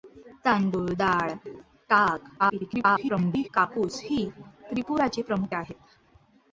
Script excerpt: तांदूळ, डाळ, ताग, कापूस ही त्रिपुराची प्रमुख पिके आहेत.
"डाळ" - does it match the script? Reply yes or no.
yes